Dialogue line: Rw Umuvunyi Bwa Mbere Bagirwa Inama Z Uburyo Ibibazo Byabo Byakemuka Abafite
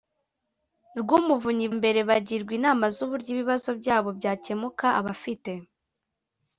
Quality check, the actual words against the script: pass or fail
fail